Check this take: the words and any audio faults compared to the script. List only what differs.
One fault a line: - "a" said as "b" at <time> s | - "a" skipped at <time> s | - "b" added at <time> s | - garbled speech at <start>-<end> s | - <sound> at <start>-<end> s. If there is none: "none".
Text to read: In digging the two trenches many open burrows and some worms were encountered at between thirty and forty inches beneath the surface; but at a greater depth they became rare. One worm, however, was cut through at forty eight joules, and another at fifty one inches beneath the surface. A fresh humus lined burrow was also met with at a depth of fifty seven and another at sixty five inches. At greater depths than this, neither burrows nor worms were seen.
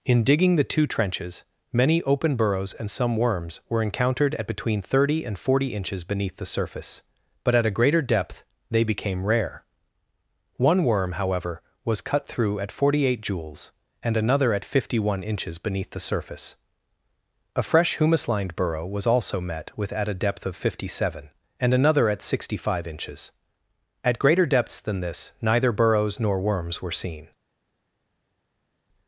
none